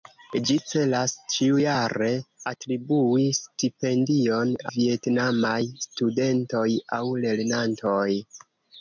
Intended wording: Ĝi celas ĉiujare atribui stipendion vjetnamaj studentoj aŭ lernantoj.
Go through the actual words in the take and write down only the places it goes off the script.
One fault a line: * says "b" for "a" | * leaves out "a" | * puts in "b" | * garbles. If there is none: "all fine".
all fine